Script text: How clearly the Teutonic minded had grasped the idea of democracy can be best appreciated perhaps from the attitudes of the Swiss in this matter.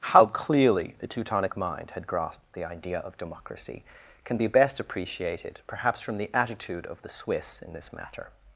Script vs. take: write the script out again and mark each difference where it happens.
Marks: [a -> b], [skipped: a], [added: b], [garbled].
How clearly the Teutonic [minded -> mind] had grasped the idea of democracy can be best appreciated perhaps from the [attitudes -> attitude] of the Swiss in this matter.